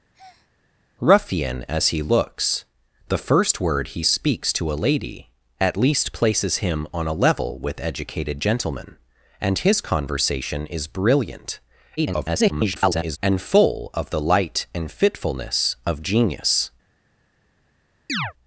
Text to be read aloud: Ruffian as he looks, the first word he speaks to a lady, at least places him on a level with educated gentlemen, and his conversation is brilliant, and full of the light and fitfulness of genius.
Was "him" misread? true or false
false